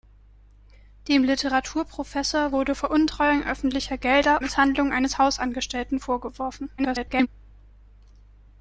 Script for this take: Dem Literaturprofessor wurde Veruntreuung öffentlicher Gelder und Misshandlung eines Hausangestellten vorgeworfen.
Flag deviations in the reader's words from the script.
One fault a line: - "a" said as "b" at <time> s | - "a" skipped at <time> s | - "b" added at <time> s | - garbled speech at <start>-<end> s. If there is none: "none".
- "und" skipped at 4.4 s
- garbled speech at 6.8-7.3 s